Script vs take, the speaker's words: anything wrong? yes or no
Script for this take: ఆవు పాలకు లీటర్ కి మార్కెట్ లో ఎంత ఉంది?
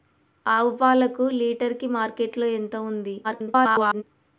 yes